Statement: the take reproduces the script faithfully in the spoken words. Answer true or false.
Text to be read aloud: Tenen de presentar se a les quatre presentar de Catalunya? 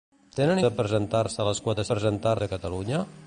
true